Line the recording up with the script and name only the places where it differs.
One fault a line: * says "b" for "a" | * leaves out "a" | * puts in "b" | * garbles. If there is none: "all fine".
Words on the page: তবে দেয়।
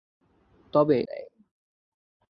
all fine